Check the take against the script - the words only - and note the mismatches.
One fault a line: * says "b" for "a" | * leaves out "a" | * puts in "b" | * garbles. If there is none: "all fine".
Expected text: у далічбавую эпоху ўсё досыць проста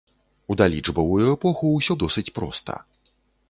all fine